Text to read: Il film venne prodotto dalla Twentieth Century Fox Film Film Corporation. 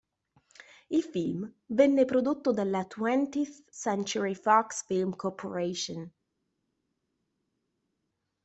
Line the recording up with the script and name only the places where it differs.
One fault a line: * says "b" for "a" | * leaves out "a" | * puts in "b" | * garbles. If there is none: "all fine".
* leaves out "Film"